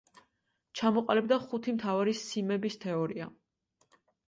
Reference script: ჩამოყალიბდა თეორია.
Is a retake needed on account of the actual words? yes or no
yes